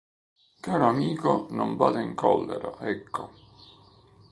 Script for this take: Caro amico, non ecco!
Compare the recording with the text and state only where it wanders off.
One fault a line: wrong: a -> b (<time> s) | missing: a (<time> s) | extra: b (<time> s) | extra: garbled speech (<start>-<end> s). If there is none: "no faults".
extra: vada in collera (1.8 s)